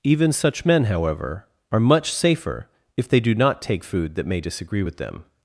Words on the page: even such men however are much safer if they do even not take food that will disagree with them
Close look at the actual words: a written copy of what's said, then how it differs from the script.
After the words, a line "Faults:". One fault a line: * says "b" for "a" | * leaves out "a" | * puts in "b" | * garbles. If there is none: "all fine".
even such men however are much safer if they do not take food that may disagree with them
Faults:
* leaves out "even"
* says "may" for "will"